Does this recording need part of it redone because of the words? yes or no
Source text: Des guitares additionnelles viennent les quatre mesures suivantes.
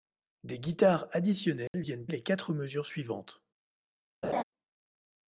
no